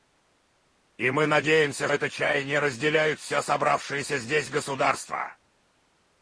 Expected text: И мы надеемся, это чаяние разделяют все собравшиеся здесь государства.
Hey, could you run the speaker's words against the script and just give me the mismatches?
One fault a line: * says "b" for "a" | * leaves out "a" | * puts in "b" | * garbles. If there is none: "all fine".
all fine